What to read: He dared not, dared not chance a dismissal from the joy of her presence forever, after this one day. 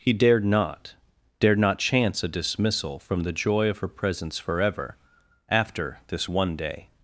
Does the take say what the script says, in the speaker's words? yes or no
yes